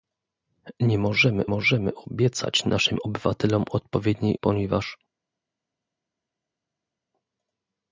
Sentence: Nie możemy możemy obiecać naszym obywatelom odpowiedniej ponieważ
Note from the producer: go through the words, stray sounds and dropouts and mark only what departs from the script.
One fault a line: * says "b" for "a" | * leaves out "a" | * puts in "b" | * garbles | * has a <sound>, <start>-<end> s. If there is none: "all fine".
all fine